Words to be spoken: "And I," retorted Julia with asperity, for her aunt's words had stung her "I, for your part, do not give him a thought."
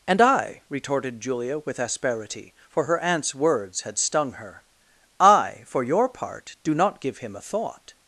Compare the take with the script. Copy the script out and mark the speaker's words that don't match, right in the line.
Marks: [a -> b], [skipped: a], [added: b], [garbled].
"And I," retorted Julia with asperity, for her aunt's words had stung her "I, for your part, do not give him a thought."